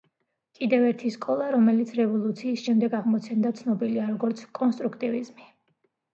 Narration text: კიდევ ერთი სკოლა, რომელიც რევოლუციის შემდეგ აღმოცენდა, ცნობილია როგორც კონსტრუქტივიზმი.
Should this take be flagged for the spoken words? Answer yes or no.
no